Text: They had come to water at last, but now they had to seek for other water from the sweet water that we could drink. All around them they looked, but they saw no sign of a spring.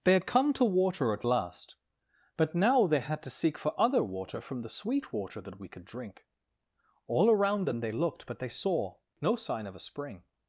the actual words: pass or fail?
pass